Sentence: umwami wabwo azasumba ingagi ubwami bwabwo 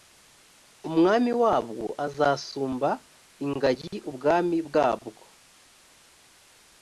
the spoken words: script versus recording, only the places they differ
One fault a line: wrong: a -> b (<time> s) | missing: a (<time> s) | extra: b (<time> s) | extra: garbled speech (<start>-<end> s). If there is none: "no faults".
no faults